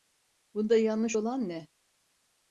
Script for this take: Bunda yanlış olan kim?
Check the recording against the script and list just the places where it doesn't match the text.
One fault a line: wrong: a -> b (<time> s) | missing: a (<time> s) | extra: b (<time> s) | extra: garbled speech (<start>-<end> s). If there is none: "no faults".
wrong: kim -> ne (1.5 s)